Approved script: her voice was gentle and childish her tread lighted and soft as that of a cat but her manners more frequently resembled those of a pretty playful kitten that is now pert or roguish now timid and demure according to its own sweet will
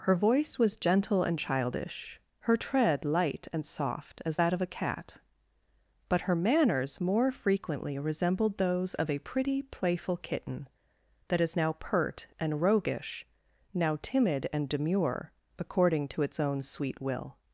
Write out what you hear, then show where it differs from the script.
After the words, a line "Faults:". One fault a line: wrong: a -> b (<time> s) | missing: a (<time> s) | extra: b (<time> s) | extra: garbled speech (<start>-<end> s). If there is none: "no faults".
her voice was gentle and childish her tread light and soft as that of a cat but her manners more frequently resembled those of a pretty playful kitten that is now pert and roguish now timid and demure according to its own sweet will
Faults:
wrong: lighted -> light (3.0 s)
wrong: or -> and (12.4 s)